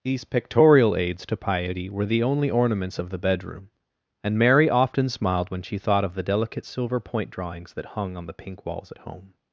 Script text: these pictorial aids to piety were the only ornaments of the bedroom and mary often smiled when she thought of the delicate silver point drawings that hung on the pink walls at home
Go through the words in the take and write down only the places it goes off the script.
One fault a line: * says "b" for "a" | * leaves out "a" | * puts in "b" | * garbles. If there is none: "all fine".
all fine